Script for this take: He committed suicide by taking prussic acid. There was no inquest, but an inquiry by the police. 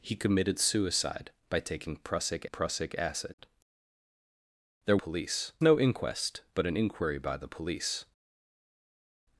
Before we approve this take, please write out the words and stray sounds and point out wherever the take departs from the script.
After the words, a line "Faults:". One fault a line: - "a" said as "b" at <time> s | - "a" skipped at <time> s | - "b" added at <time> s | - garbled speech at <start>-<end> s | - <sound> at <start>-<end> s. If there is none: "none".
He committed suicide by taking prussic prussic acid. There police no inquest, but an inquiry by the police.
Faults:
- "prussic" added at 2.4 s
- "was" said as "police" at 5.0 s